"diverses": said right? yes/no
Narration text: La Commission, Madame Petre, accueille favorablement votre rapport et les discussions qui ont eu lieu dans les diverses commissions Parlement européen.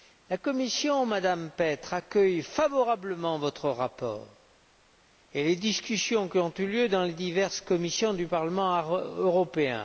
yes